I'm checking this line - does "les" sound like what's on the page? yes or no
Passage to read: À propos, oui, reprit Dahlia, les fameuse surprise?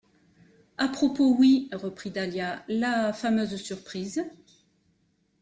no